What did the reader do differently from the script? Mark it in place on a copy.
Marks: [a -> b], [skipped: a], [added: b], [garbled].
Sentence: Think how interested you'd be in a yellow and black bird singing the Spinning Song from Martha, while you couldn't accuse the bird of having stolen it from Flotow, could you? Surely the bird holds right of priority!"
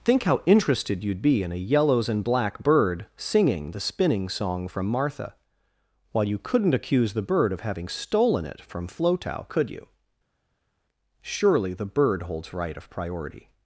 Think how interested you'd be in a [yellow -> yellows] and black bird singing the Spinning Song from Martha, while you couldn't accuse the bird of having stolen it from Flotow, could you? Surely the bird holds right of priority!"